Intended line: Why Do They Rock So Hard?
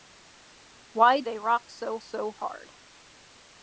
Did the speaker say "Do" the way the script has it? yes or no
no